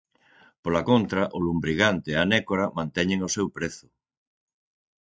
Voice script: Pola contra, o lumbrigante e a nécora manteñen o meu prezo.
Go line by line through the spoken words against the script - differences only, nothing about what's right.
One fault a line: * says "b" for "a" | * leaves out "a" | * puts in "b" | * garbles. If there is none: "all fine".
* says "seu" for "meu"